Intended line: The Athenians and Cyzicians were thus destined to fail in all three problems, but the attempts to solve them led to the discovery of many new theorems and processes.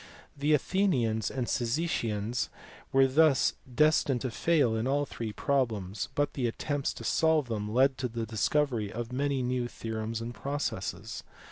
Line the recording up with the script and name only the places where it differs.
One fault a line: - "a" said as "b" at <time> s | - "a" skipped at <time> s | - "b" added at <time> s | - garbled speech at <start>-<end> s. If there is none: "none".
none